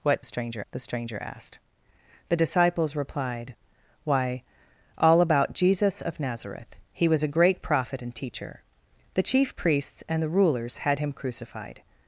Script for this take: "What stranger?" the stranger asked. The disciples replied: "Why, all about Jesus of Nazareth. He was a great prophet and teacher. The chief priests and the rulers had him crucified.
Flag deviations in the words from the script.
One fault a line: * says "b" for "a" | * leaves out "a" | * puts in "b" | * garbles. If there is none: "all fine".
all fine